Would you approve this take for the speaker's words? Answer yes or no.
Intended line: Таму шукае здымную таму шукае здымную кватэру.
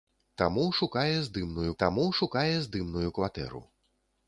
yes